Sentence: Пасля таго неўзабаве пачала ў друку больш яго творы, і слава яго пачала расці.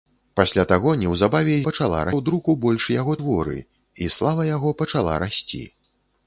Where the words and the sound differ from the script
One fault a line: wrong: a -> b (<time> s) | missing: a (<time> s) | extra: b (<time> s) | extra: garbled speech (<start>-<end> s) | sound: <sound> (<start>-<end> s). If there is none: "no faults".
no faults